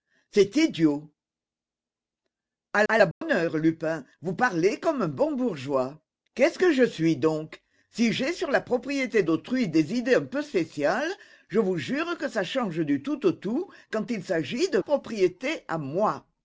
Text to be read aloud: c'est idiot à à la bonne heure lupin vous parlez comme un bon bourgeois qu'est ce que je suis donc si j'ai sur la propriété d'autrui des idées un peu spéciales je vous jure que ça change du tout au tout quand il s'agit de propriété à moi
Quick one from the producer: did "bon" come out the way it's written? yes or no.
yes